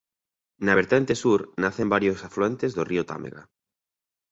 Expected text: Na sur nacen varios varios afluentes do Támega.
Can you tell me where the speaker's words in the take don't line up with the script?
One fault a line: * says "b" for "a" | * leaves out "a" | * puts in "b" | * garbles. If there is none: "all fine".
* puts in "vertente"
* leaves out "varios"
* puts in "río"